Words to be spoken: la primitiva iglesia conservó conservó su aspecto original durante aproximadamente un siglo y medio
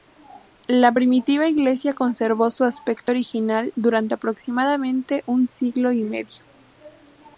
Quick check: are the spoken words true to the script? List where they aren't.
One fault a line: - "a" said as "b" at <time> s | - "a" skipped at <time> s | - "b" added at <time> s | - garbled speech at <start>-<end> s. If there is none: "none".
- "conservó" skipped at 2.5 s